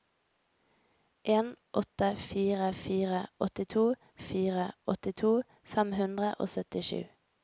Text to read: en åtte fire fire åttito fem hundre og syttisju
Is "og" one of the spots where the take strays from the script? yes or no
no